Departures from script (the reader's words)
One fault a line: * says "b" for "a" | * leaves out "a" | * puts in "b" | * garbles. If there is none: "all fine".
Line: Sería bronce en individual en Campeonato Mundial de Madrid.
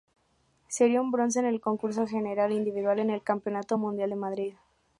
* puts in "un"
* puts in "el concurso general"
* puts in "el"